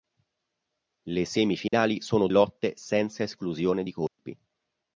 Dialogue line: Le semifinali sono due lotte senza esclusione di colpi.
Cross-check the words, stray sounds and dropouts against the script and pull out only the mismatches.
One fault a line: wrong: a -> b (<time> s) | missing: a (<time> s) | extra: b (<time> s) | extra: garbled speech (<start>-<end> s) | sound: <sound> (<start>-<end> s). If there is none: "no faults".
sound: dropout (1.7-1.7 s)
missing: due (2.3 s)
sound: dropout (4.1-4.2 s)